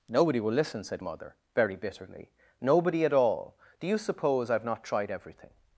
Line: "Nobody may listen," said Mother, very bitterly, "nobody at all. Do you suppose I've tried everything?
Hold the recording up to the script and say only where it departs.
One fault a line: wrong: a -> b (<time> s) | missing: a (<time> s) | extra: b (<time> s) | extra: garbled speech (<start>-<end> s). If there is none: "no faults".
wrong: may -> will (0.4 s)
extra: not (4.6 s)